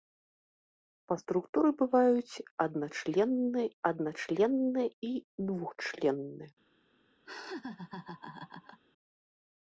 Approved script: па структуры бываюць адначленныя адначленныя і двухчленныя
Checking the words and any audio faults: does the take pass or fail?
fail